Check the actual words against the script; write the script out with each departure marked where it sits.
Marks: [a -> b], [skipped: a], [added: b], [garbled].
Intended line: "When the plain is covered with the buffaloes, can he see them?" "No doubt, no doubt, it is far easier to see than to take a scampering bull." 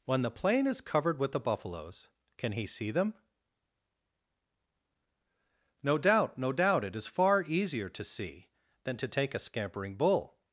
"When the plain is covered with the buffaloes, can he see them?" "No doubt, no doubt, it is far easier to see than to take a scampering bull."